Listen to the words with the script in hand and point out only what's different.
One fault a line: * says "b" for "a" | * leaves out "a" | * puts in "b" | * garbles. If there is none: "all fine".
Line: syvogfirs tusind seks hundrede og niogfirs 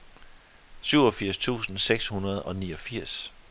all fine